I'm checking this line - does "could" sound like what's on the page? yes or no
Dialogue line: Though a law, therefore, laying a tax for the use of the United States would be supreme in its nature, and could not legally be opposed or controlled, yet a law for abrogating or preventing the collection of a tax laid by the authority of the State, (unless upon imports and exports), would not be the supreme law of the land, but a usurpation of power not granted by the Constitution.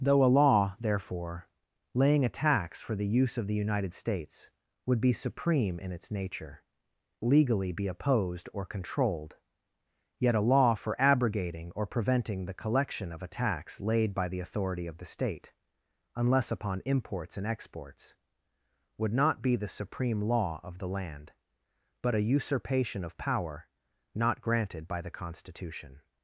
no